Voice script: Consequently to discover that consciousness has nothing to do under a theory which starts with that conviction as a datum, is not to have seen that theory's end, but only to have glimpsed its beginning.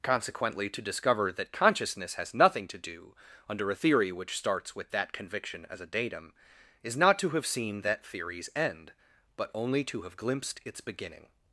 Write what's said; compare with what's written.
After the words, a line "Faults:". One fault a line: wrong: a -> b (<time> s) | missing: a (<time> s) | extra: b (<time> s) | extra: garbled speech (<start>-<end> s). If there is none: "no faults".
Consequently to discover that consciousness has nothing to do under a theory which starts with that conviction as a datum, is not to have seen that theory's end, but only to have glimpsed its beginning.
Faults:
no faults